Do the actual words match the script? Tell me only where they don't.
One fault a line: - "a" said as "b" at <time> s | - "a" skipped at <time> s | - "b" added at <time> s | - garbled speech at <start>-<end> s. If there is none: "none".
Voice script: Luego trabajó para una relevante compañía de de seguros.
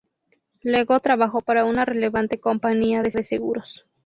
none